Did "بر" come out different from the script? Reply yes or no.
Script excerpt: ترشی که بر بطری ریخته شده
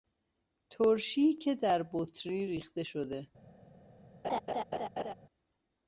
yes